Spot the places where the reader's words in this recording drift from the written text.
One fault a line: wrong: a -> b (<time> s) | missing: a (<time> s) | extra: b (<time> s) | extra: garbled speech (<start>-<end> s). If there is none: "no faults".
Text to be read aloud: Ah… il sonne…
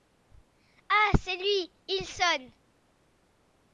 extra: c'est lui (1.2 s)